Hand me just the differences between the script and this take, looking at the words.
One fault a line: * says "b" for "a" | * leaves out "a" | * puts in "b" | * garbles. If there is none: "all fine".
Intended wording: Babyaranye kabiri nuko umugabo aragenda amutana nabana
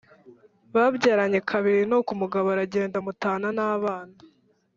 all fine